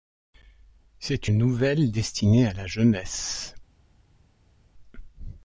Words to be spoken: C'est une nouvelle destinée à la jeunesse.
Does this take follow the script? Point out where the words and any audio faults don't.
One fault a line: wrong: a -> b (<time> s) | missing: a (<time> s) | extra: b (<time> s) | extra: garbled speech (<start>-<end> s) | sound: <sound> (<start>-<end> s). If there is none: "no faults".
missing: une (1.3 s)